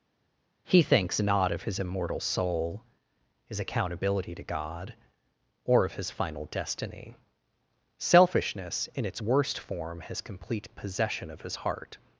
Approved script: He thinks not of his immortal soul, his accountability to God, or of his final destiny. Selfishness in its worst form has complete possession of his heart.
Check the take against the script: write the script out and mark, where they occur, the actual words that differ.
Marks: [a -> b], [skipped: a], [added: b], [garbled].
He thinks not of his immortal soul, his accountability to God, or of his final destiny. Selfishness in its worst form has complete possession of his heart.